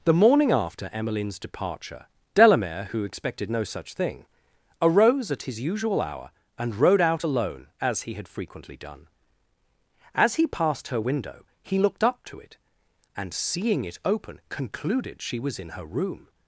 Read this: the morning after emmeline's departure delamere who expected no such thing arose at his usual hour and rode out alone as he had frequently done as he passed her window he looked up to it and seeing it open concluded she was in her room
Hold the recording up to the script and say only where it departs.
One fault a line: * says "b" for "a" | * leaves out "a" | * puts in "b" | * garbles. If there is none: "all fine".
all fine